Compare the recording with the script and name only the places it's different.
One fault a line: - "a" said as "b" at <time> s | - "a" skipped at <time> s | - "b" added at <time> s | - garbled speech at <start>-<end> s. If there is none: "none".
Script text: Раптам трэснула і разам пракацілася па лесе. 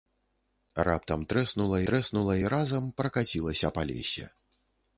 - "трэснула" added at 1.9 s